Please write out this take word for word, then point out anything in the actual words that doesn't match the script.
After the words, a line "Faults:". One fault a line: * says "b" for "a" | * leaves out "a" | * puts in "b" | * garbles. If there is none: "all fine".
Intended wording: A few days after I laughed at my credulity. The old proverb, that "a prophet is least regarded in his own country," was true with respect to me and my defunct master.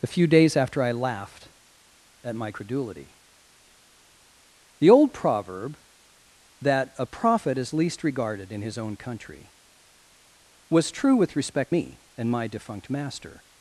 A few days after I laughed at my credulity. The old proverb, that "a prophet is least regarded in his own country," was true with respect me and my defunct master.
Faults:
* leaves out "to"